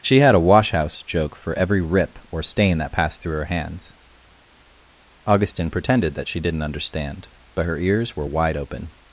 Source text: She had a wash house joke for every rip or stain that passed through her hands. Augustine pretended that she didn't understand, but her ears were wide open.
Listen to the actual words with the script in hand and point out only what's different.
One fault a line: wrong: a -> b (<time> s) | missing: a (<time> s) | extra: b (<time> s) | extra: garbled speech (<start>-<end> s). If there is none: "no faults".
no faults